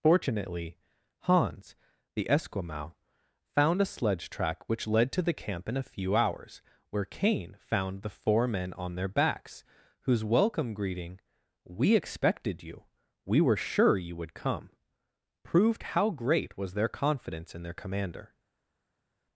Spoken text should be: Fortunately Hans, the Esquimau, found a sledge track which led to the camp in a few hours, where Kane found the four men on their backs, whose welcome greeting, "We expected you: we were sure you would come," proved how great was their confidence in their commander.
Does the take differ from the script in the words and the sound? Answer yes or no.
no